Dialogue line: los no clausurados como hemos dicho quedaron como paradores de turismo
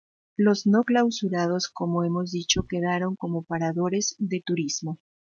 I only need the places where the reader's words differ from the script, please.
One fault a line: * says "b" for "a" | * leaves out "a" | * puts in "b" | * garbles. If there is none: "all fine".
all fine